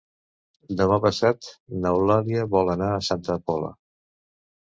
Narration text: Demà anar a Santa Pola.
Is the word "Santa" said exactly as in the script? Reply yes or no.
yes